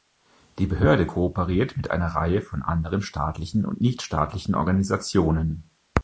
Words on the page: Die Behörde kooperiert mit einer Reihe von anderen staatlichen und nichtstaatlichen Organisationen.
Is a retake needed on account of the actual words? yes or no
no